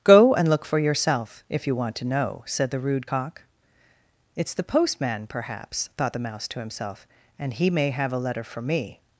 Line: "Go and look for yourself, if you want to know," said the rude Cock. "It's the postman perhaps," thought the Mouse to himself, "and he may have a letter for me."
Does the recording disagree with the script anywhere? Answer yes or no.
no